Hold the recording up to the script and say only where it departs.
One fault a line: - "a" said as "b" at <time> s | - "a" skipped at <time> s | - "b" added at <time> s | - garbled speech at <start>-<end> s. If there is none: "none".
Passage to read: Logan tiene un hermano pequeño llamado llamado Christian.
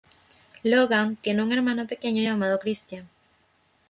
- "llamado" skipped at 2.6 s